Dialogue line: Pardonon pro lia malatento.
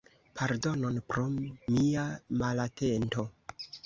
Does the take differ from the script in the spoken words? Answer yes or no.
yes